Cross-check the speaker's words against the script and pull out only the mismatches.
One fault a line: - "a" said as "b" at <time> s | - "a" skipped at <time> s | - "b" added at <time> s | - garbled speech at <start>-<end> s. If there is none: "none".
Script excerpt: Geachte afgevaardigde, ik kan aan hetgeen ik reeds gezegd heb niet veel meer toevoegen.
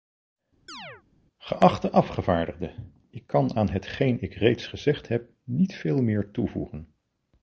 none